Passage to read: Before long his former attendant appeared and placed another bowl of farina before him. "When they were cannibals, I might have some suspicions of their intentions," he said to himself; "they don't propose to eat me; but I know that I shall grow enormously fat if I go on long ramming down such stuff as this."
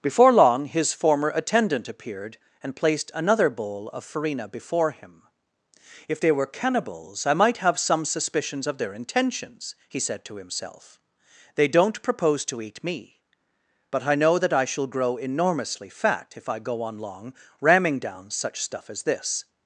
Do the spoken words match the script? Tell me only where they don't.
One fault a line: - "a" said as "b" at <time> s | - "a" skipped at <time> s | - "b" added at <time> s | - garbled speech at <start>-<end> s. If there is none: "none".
- "When" said as "If" at 6.1 s